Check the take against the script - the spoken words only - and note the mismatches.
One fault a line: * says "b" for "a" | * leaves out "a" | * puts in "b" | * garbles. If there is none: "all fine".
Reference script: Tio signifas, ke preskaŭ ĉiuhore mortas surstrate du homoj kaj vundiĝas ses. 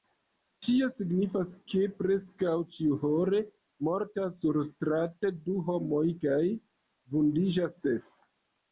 all fine